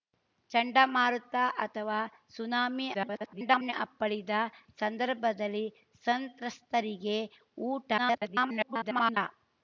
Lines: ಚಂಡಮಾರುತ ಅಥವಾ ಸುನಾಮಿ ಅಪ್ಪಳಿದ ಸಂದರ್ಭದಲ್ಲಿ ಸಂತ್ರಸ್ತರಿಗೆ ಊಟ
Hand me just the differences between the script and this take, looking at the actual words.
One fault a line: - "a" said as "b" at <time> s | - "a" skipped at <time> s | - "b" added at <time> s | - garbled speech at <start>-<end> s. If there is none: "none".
- garbled speech at 2.9-3.7 s
- garbled speech at 8.0-9.2 s